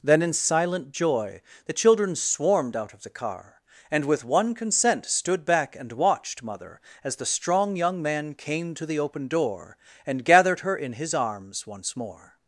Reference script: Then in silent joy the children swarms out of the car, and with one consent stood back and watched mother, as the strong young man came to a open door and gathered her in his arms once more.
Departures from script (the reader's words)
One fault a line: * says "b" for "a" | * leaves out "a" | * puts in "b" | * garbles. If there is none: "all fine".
* says "swarmed" for "swarms"
* says "the" for "a"